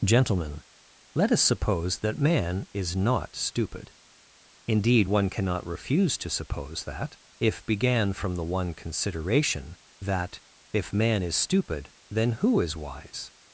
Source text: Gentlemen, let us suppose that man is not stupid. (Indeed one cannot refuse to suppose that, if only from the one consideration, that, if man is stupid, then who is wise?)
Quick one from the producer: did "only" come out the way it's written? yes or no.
no